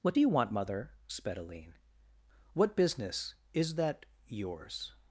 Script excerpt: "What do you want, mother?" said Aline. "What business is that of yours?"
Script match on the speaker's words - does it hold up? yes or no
no